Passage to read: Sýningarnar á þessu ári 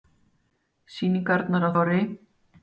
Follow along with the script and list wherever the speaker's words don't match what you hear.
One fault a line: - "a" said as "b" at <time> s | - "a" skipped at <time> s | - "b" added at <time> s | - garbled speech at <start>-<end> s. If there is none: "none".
- "þessu" skipped at 1.7 s